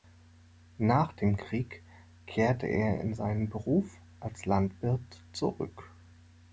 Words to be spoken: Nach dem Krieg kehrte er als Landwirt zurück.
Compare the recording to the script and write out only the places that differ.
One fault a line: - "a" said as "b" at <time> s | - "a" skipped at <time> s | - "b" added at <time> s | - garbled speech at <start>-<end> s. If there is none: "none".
- "in seinen Beruf" added at 3.0 s